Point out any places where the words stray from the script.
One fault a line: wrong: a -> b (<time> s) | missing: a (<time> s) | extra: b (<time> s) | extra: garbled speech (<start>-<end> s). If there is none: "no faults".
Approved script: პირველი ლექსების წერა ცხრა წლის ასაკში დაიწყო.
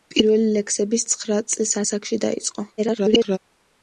missing: წერა (1.1 s)
extra: garbled speech (2.8-3.4 s)